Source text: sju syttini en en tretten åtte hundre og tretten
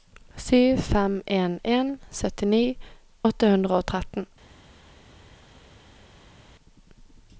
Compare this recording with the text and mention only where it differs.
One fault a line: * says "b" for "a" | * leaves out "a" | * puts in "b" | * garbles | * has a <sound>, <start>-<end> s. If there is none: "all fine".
* says "fem" for "syttini"
* says "syttini" for "tretten"